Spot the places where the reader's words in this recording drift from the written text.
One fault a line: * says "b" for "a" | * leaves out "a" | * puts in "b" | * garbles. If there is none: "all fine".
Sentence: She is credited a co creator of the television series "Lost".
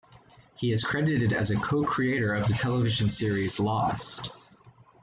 * says "He" for "She"
* puts in "as"